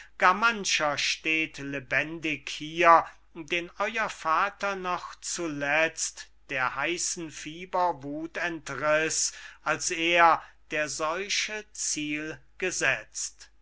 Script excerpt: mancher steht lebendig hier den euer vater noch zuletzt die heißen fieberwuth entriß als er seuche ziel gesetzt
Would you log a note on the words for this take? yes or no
yes